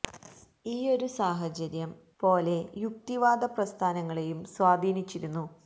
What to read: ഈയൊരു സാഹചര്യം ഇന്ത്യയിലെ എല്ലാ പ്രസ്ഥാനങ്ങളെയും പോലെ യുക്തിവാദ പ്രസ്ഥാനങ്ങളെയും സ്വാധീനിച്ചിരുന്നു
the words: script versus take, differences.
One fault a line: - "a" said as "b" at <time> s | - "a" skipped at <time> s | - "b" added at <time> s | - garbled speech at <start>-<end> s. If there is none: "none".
- "ഇന്ത്യയിലെ എല്ലാ പ്രസ്ഥാനങ്ങളെയും" skipped at 1.9 s